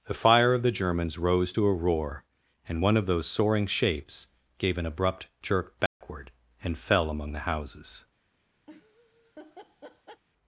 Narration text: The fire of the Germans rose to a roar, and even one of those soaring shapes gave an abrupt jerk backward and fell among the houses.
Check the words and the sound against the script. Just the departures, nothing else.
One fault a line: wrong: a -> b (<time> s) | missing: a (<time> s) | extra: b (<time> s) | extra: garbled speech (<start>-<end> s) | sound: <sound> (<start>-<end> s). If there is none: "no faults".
missing: even (2.8 s)
sound: dropout (5.9-6.0 s)
sound: laugh (8.7-10.2 s)